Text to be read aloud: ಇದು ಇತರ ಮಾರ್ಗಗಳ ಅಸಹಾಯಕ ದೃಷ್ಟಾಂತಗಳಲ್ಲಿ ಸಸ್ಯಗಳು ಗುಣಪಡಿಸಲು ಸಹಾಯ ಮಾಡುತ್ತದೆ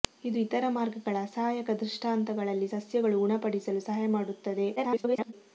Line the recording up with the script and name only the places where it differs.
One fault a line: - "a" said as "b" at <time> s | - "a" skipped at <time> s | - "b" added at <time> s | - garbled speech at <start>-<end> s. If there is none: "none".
- garbled speech at 4.8-5.3 s